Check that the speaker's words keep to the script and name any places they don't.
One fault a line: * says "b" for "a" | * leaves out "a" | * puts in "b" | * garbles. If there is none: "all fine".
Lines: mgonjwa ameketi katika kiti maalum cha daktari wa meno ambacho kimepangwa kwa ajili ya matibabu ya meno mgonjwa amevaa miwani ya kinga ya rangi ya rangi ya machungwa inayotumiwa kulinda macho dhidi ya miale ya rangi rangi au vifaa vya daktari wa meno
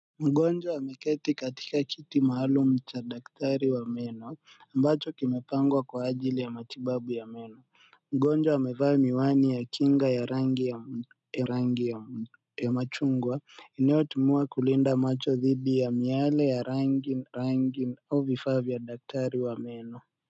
all fine